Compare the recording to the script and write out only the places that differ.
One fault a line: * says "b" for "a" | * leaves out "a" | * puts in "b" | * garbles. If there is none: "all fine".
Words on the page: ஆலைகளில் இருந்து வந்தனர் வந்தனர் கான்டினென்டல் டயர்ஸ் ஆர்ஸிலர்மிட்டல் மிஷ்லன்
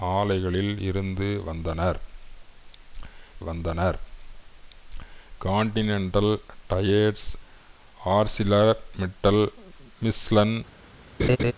all fine